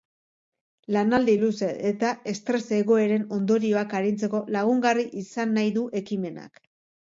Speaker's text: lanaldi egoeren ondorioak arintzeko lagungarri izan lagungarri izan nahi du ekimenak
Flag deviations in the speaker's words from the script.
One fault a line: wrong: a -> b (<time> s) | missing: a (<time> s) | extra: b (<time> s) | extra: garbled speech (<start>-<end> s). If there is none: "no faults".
extra: luze eta estres (1.4 s)
missing: lagungarri izan (5.6 s)